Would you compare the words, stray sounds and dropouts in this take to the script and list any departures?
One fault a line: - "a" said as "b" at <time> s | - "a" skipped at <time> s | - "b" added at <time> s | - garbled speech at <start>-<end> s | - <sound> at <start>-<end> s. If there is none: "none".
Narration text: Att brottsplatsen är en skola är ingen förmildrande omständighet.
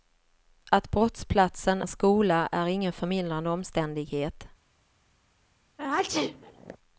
- "är" skipped at 1.8 s
- sneeze at 5.8-6.8 s